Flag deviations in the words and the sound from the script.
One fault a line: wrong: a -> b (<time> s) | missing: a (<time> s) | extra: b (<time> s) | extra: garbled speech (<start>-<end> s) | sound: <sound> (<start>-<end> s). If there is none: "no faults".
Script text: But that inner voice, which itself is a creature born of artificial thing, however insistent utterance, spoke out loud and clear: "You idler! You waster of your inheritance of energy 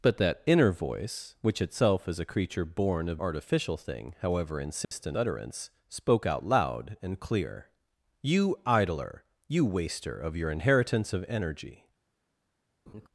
sound: dropout (4.8-4.9 s)
sound: laugh (12.9-13.1 s)